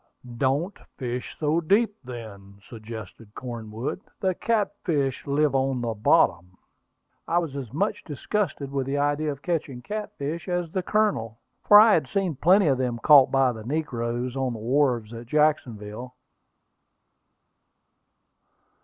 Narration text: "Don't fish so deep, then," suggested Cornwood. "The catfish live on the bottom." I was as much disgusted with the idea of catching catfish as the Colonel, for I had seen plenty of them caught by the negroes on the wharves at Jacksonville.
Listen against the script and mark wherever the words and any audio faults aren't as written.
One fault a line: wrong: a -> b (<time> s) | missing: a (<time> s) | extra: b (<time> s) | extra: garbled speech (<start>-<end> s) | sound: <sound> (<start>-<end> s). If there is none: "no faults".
no faults